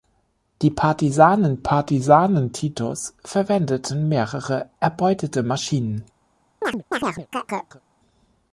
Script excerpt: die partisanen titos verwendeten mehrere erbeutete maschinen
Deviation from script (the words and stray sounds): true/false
true